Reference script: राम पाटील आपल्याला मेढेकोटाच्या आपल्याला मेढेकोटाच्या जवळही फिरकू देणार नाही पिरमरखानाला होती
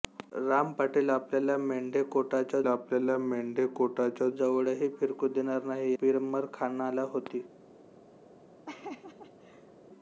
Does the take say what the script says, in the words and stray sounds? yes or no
no